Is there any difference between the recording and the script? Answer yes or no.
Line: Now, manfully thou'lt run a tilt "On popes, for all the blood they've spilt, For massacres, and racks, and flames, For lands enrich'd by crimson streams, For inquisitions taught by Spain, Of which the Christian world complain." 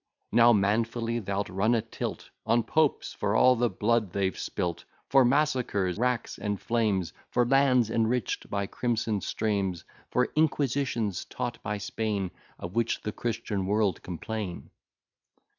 yes